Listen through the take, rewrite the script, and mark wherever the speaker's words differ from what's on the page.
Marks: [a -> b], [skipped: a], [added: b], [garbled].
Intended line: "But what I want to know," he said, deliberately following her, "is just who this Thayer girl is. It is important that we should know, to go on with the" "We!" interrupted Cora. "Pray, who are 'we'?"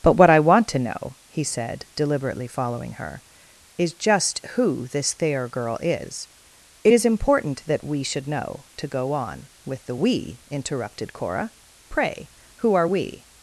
"But what I want to know," he said, deliberately following her, "is just who this Thayer girl is. It is important that we should know, to go on with the" "We!" interrupted Cora. "Pray, who are 'we'?"